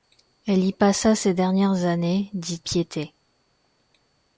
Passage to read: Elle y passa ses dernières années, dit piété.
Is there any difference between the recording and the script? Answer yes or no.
no